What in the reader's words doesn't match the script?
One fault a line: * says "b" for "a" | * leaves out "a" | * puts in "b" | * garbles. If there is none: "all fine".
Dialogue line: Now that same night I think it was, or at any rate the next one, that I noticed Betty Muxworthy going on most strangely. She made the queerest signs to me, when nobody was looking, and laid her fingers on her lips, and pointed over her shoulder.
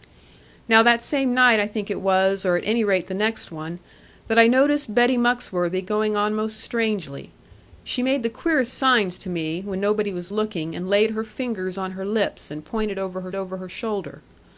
* puts in "over her"